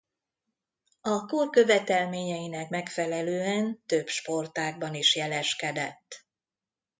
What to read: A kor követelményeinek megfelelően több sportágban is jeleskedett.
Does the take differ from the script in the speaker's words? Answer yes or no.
no